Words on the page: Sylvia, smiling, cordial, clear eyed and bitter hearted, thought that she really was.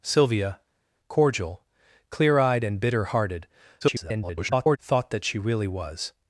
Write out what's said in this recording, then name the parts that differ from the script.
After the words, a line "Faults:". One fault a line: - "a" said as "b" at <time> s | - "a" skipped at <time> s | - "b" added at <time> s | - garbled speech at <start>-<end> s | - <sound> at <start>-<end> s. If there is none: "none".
Sylvia, cordial, clear eyed and bitter hearted, [garbled] thought that she really was.
Faults:
- "smiling" skipped at 0.6 s
- garbled speech at 3.8-4.8 s